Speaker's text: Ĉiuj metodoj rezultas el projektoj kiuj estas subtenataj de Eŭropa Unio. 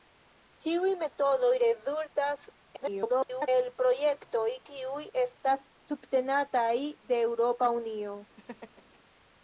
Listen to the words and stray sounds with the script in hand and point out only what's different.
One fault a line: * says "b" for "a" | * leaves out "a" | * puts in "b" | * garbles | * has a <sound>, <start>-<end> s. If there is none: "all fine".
* garbles
* has a laugh, 8.4-9.0 s